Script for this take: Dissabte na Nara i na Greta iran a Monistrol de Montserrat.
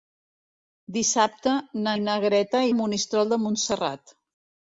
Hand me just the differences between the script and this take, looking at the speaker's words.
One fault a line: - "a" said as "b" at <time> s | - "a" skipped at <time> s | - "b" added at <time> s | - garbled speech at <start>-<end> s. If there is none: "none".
- "Nara" skipped at 1.9 s
- "iran" skipped at 2.6 s